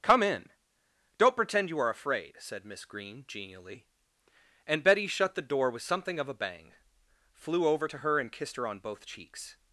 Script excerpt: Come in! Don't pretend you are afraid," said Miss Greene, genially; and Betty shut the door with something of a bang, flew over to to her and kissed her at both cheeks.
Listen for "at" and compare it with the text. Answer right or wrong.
wrong